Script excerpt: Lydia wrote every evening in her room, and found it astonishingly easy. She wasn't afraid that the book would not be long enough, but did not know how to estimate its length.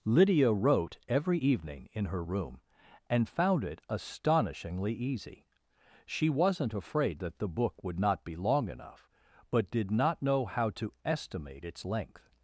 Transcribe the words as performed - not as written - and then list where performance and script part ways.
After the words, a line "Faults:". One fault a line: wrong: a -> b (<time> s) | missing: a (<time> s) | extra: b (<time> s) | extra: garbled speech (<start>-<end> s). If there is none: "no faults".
Lydia wrote every evening in her room, and found it astonishingly easy. She wasn't afraid that the book would not be long enough, but did not know how to estimate its length.
Faults:
no faults